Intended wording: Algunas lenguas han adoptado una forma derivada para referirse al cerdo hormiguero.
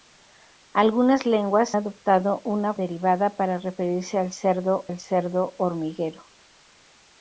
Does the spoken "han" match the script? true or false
false